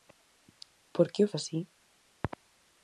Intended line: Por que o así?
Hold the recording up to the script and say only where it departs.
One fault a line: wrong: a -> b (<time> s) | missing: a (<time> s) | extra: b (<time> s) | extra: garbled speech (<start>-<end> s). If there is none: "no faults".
no faults